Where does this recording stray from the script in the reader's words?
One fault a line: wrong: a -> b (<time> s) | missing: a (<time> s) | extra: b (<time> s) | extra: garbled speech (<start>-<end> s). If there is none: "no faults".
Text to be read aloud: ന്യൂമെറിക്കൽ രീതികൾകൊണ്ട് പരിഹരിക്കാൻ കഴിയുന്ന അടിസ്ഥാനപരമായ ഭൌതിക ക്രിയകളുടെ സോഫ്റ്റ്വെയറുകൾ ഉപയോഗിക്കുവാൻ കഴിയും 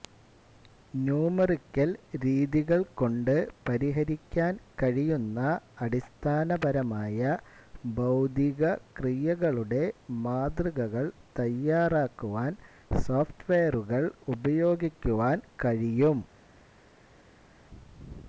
extra: മാതൃകകൾ തയ്യാറാക്കുവാൻ (10.2 s)